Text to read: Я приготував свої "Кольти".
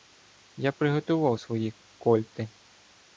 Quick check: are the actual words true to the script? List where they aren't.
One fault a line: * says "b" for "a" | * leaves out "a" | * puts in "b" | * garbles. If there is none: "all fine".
all fine